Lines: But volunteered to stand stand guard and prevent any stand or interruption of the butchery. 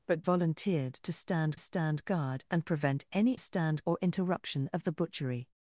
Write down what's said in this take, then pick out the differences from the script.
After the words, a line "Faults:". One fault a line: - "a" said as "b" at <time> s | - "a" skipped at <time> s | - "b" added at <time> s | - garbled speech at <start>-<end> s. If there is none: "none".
But volunteered to stand stand guard and prevent any stand or interruption of the butchery.
Faults:
none